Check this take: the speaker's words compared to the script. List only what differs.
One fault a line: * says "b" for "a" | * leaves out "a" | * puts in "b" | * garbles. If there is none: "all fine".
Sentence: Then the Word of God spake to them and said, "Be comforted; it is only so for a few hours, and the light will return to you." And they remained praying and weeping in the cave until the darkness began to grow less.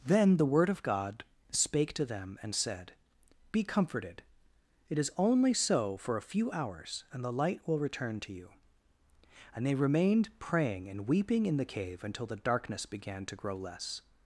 all fine